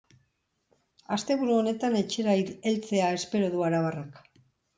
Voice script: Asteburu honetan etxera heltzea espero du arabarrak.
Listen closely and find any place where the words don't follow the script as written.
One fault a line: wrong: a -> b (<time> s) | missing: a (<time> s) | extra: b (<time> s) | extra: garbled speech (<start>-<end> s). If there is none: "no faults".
no faults